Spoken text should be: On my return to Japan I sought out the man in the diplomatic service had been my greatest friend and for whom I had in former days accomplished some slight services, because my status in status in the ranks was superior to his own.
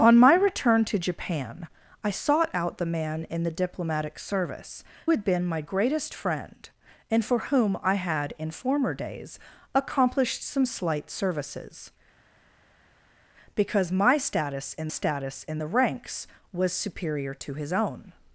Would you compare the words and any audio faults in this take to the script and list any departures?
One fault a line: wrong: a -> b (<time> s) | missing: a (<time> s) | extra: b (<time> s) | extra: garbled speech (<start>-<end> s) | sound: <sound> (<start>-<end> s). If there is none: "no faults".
no faults